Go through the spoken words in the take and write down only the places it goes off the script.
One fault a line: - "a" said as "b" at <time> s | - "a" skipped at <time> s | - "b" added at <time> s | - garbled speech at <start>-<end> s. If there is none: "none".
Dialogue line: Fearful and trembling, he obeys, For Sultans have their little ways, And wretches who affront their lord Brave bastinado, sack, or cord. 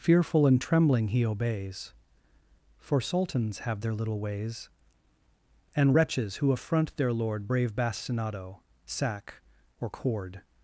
none